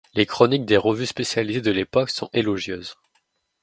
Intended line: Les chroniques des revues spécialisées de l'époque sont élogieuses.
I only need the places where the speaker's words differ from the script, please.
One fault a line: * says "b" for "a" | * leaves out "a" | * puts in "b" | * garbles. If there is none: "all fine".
all fine